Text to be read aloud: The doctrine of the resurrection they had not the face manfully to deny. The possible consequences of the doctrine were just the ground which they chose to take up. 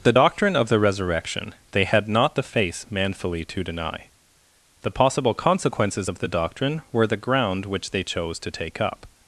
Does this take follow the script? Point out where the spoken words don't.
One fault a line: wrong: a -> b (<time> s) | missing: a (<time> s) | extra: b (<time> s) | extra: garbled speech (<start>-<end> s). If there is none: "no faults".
missing: just (7.1 s)